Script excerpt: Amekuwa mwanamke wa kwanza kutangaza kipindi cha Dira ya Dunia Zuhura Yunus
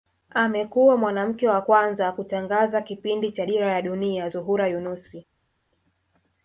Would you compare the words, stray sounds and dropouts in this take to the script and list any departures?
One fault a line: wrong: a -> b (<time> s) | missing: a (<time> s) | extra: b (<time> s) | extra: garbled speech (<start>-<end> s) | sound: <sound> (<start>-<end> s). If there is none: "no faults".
no faults